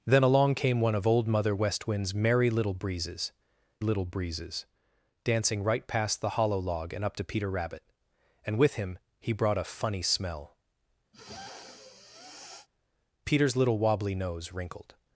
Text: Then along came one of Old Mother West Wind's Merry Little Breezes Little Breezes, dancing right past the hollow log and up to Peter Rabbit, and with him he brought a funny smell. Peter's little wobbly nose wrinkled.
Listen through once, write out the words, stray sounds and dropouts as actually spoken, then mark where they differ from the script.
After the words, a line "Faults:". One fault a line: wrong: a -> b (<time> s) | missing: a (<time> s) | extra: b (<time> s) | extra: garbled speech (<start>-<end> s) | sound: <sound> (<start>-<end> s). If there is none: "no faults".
Then along came one of Old Mother West Wind's Merry Little Breezes Little Breezes, dancing right past the hollow log and up to Peter Rabbit, and with him he brought a funny smell. Peter's little wobbly nose wrinkled.
Faults:
sound: sniff (11.1-12.7 s)